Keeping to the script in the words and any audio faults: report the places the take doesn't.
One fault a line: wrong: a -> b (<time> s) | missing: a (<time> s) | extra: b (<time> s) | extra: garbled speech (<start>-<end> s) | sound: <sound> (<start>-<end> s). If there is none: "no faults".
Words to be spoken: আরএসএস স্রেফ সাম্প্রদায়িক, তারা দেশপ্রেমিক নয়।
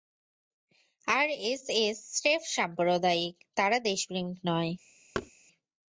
sound: thud (5.1-5.3 s)